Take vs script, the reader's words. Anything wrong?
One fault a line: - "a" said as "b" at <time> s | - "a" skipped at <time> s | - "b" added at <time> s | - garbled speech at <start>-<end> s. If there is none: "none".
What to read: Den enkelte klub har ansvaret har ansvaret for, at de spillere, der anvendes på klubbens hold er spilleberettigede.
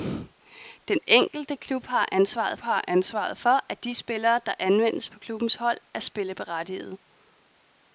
none